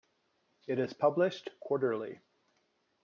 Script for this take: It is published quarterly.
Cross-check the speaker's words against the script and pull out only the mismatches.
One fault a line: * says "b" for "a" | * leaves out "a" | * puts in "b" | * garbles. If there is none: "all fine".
all fine